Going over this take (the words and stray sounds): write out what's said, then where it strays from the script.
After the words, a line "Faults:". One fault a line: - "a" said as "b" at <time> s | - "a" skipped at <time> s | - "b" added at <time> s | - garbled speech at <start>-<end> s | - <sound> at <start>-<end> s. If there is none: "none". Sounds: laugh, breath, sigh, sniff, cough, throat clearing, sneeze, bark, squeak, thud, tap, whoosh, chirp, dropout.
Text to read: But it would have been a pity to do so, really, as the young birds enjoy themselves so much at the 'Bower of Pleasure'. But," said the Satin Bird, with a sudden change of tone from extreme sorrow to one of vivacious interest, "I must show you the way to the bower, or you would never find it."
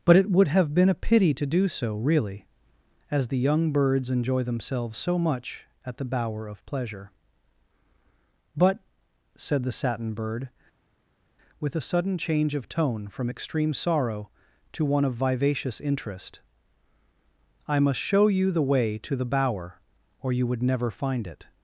But it would have been a pity to do so, really, as the young birds enjoy themselves so much at the 'Bower of Pleasure'. But," said the Satin Bird, with a sudden change of tone from extreme sorrow to one of vivacious interest, "I must show you the way to the bower, or you would never find it."
Faults:
none